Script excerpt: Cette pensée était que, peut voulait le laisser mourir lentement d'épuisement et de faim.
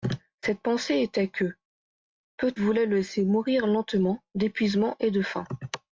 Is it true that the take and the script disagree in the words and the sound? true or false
false